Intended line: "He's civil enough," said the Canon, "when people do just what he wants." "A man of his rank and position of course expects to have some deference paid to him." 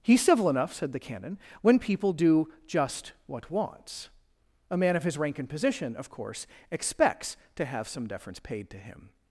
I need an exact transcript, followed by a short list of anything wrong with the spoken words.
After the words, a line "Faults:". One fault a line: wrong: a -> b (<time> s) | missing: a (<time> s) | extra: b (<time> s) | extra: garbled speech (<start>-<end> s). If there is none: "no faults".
"He's civil enough," said the Canon, "when people do just what wants." "A man of his rank and position of course expects to have some deference paid to him."
Faults:
missing: he (3.5 s)